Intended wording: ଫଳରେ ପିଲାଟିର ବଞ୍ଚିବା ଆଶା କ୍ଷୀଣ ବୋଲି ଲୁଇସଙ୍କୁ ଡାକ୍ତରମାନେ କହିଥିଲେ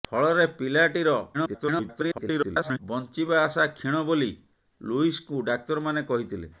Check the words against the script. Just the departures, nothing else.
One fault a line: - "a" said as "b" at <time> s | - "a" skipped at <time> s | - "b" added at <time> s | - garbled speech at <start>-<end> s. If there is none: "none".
- garbled speech at 1.3-2.8 s